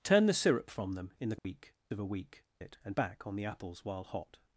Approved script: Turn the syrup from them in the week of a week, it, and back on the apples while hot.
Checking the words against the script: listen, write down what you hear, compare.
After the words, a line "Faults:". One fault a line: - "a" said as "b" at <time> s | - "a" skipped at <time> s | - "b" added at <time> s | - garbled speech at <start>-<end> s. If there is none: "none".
Turn the syrup from them in the week of a week, it, and back on the apples while hot.
Faults:
none